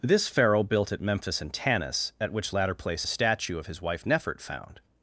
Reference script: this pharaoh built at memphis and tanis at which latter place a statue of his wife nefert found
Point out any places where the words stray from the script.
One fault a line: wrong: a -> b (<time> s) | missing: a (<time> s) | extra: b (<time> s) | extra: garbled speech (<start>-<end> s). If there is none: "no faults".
no faults